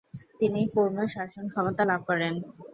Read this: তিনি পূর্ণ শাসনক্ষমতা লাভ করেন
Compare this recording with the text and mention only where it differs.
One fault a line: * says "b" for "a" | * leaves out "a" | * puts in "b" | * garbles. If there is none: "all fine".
all fine